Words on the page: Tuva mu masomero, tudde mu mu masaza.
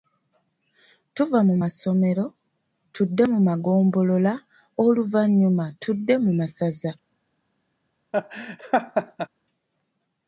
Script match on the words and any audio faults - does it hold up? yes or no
no